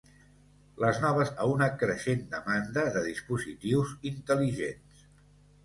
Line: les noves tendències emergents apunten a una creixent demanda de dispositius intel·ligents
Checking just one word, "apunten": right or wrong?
wrong